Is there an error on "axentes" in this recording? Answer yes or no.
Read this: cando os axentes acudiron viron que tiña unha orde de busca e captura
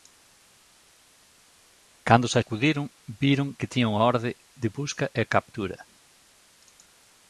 yes